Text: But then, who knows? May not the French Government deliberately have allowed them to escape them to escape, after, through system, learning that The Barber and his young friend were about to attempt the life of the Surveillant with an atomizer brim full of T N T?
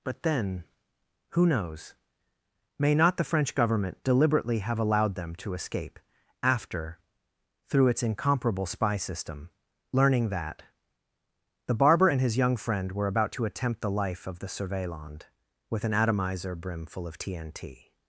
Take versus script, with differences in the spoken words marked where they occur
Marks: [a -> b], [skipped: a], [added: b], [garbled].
But then, who knows? May not the French Government deliberately have allowed them to escape [them to escape, after, through -> after through its incomparable spy] system, learning that The Barber and his young friend were about to attempt the life of the Surveillant with an atomizer brim full of T N T?